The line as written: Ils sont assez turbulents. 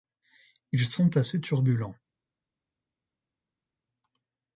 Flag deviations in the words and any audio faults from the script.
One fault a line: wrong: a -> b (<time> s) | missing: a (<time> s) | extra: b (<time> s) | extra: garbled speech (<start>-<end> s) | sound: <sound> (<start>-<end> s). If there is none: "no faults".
no faults